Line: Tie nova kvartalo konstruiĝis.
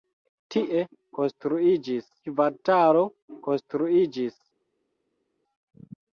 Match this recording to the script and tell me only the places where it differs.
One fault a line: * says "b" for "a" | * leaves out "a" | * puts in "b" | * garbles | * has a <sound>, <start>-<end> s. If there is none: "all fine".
* says "konstruiĝis" for "nova"